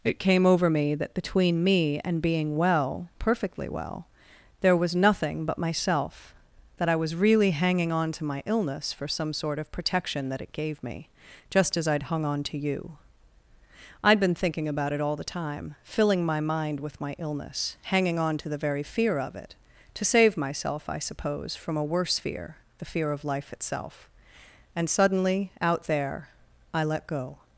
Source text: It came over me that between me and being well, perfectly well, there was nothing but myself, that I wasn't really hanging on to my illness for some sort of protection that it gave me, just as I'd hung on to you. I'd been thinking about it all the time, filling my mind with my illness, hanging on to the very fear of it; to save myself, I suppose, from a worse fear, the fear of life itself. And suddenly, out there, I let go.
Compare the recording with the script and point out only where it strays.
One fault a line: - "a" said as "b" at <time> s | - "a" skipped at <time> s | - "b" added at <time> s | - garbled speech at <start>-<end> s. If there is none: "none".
- "wasn't" said as "was" at 7.0 s